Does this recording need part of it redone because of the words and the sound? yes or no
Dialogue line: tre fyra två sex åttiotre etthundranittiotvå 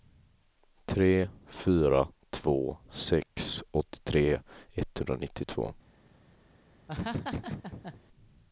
yes